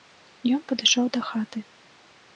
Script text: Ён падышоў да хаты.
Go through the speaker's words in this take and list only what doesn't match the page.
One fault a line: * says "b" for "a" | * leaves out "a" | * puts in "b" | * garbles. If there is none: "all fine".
all fine